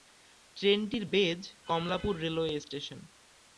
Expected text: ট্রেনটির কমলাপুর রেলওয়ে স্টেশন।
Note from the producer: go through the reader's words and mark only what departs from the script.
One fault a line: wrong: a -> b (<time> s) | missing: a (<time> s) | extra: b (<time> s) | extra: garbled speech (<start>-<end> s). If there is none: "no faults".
extra: বেজ (1.0 s)